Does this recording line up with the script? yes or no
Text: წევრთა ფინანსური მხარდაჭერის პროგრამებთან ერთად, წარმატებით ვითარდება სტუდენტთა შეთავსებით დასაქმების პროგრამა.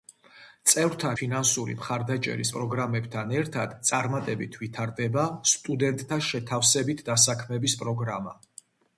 yes